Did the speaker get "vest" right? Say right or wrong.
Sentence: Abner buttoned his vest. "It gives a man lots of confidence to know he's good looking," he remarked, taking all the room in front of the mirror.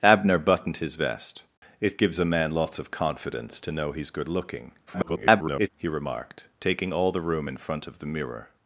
right